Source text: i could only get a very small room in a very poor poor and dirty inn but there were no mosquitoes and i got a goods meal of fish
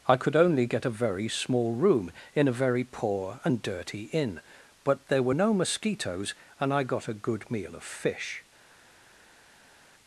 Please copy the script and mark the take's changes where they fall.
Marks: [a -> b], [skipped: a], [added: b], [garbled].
i could only get a very small room in a very poor [skipped: poor] and dirty inn but there were no mosquitoes and i got a [goods -> good] meal of fish